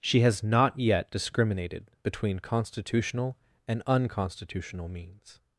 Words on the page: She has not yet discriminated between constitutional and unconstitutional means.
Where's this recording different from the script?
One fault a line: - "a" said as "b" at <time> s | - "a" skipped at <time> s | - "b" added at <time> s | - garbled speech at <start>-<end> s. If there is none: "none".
none